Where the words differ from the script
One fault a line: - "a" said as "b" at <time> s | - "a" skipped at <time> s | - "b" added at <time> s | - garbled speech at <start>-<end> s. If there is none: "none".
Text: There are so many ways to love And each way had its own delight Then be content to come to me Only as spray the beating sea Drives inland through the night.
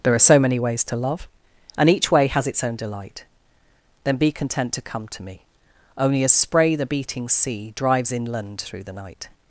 - "had" said as "has" at 2.3 s